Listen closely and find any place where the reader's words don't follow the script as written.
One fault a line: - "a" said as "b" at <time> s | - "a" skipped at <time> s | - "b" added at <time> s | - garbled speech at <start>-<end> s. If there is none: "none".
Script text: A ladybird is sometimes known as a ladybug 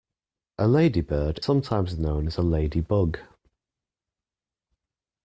- "is" skipped at 1.4 s